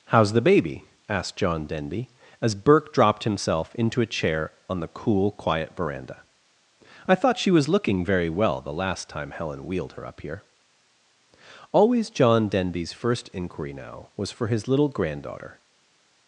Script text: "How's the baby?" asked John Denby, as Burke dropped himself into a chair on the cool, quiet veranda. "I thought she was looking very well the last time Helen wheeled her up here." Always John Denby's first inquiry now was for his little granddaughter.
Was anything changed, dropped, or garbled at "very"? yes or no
no